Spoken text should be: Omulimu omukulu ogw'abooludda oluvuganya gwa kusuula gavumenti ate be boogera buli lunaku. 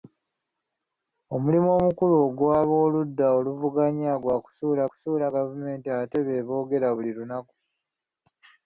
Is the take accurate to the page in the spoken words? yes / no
no